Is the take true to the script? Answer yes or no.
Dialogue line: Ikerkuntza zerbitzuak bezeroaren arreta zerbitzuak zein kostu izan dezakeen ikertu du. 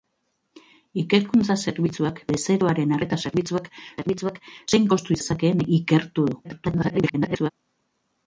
no